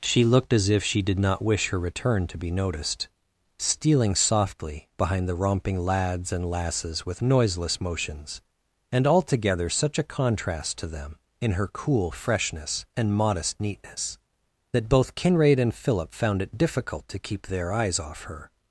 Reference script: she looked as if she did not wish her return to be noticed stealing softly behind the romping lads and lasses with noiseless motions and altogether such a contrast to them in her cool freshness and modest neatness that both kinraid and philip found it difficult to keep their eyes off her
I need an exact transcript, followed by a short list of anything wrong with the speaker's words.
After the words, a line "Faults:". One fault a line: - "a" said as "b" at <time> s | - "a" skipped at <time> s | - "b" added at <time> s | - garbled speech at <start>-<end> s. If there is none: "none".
she looked as if she did not wish her return to be noticed stealing softly behind the romping lads and lasses with noiseless motions and altogether such a contrast to them in her cool freshness and modest neatness that both kinraid and philip found it difficult to keep their eyes off her
Faults:
none